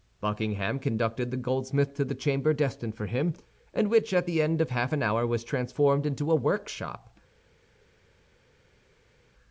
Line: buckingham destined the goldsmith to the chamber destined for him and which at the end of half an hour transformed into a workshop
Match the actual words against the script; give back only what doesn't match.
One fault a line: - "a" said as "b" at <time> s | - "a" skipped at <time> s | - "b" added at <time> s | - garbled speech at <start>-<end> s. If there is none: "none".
- "destined" said as "conducted" at 0.8 s
- "was" added at 5.3 s